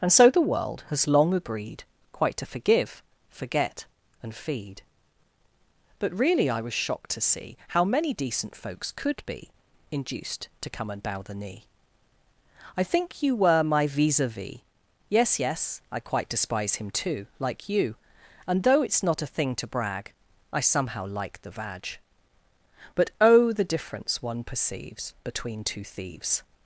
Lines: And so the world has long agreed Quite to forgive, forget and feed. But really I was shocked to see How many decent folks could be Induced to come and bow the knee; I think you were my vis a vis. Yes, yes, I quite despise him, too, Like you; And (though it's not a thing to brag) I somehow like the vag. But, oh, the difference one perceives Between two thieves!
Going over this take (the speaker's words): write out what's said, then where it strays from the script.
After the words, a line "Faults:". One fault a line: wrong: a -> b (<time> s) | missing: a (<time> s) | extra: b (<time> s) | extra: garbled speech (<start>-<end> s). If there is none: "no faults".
And so the world has long agreed Quite to forgive, forget and feed. But really I was shocked to see How many decent folks could be Induced to come and bow the knee; I think you were my vis a vis. Yes, yes, I quite despise him, too, Like you; And (though it's not a thing to brag) I somehow like the vag. But, oh, the difference one perceives Between two thieves!
Faults:
no faults